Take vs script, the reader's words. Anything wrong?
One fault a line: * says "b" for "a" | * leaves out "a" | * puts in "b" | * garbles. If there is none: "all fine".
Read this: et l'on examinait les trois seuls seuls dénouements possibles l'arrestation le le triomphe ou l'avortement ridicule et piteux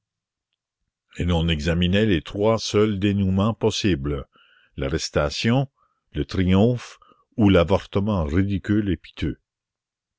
* leaves out "seuls"
* leaves out "le"